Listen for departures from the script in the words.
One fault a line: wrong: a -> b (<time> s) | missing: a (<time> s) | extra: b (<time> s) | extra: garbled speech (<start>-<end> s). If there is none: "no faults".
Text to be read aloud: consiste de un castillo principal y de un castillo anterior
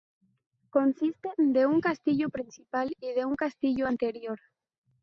no faults